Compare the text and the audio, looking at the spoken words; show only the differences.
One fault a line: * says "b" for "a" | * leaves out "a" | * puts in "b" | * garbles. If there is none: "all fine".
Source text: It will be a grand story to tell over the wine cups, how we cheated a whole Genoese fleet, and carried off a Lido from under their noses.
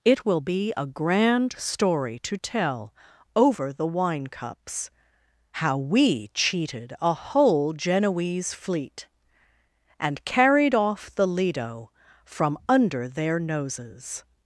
* says "the" for "a"